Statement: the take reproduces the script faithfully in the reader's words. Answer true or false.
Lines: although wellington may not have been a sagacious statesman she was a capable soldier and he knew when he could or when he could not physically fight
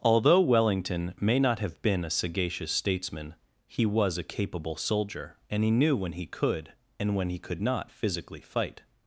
false